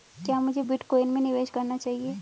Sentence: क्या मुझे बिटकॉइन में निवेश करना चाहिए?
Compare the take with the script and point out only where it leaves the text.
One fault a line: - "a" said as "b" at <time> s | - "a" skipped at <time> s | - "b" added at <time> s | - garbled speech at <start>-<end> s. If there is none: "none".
none